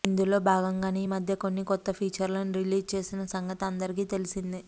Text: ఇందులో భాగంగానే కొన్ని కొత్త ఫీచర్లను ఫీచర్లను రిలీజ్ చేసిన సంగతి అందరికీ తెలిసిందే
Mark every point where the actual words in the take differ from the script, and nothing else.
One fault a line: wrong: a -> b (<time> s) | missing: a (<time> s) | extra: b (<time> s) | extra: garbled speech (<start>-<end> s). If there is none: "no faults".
extra: ఈ మధ్య (1.0 s)
missing: ఫీచర్లను (2.5 s)